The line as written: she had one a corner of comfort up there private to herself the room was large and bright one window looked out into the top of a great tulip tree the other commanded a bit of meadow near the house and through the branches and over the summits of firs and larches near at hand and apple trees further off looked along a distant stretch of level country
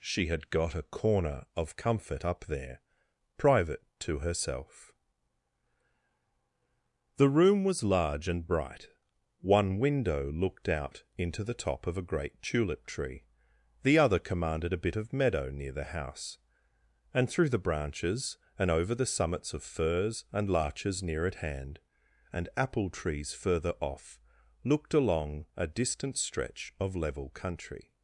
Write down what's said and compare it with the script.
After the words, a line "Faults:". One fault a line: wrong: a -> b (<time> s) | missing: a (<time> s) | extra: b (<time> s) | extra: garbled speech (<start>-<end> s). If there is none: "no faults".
she had got a corner of comfort up there private to herself the room was large and bright one window looked out into the top of a great tulip tree the other commanded a bit of meadow near the house and through the branches and over the summits of firs and larches near at hand and apple trees further off looked along a distant stretch of level country
Faults:
wrong: one -> got (0.5 s)